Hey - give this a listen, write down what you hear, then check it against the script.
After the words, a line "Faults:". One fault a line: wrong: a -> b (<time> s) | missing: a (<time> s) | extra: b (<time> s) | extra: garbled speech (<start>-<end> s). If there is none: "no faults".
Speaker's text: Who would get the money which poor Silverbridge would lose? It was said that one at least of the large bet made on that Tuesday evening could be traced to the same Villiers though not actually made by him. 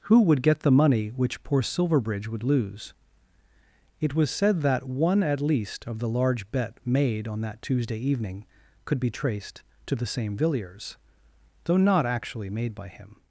Who would get the money which poor Silverbridge would lose? It was said that one at least of the large bet made on that Tuesday evening could be traced to the same Villiers though not actually made by him.
Faults:
no faults